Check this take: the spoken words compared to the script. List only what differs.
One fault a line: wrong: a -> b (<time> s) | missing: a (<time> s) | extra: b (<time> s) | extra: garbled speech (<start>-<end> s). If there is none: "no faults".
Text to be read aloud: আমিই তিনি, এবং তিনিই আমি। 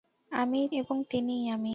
missing: তিনি (0.7 s)